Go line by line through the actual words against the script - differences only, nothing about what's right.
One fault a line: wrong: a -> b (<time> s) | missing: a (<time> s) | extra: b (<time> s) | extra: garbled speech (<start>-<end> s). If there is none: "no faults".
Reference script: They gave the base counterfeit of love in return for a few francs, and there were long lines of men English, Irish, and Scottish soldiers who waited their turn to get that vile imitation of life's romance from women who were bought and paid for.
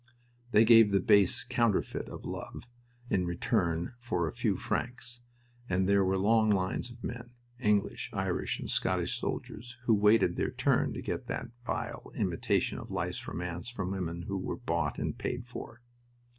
no faults